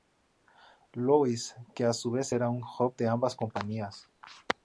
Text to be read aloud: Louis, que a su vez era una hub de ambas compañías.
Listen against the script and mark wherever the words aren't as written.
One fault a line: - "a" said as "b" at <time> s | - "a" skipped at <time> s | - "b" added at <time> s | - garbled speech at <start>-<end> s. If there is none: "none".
- "una" said as "un" at 2.5 s